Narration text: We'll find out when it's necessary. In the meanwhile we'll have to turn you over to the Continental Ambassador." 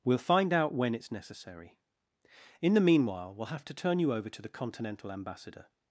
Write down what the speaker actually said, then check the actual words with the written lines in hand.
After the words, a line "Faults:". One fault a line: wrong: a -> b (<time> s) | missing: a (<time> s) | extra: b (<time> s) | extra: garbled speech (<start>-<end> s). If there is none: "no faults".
We'll find out when it's necessary. In the meanwhile we'll have to turn you over to the Continental Ambassador."
Faults:
no faults